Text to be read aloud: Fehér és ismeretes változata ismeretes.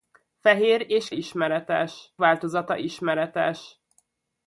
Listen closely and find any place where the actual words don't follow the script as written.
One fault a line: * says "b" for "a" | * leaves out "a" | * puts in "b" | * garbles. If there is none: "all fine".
all fine